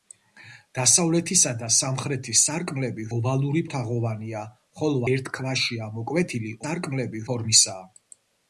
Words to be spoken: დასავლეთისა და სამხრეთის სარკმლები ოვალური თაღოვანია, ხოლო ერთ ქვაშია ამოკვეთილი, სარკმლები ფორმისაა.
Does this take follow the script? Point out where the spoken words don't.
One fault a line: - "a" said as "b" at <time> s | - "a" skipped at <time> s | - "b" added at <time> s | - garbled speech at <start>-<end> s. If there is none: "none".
none